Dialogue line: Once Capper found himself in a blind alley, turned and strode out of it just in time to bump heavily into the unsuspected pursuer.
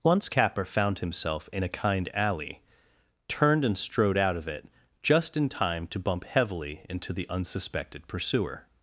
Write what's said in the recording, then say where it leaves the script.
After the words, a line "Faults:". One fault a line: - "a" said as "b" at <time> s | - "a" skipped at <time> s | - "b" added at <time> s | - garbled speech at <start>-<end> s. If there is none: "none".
Once Capper found himself in a kind alley, turned and strode out of it just in time to bump heavily into the unsuspected pursuer.
Faults:
- "blind" said as "kind" at 1.7 s